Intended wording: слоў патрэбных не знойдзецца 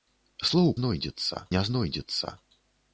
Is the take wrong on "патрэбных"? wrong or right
wrong